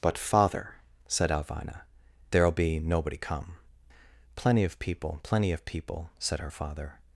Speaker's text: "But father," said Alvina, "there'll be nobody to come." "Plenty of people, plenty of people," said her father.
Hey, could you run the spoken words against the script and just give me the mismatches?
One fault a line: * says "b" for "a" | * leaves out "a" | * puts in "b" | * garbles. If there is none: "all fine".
* leaves out "to"